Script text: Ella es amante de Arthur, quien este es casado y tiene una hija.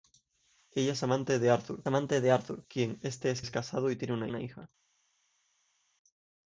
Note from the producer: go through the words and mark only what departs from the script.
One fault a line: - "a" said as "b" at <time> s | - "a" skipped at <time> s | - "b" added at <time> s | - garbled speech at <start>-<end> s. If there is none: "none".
- "amante de Arthur" added at 1.9 s
- "es" added at 3.4 s
- "una" added at 4.3 s